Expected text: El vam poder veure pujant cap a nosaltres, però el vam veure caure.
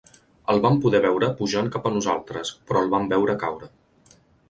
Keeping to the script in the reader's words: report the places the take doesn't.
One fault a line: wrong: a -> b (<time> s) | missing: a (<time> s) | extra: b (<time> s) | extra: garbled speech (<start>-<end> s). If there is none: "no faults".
no faults